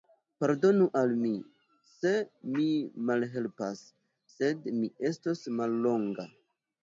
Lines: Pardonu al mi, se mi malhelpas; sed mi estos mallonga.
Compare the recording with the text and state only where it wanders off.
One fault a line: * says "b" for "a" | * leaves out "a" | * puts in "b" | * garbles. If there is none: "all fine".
all fine